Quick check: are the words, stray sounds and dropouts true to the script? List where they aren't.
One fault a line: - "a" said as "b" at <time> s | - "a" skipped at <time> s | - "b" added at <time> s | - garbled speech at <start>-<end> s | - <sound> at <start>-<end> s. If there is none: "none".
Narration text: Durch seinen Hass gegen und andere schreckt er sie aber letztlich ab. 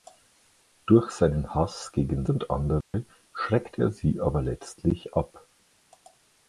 - dropout at 2.8-2.9 s